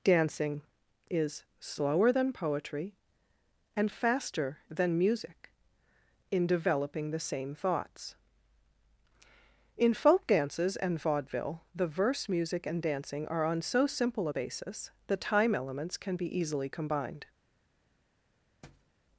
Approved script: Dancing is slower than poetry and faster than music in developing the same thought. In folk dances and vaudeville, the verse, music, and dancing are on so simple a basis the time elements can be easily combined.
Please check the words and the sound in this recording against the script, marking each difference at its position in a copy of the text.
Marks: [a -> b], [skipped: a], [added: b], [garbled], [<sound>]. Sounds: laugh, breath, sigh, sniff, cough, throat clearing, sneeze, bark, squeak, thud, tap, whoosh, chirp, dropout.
Dancing is slower than poetry and faster than music in developing the same [thought. -> thoughts] In folk dances and vaudeville, the verse, music, and dancing are on so simple a basis the time elements can be easily combined. [thud]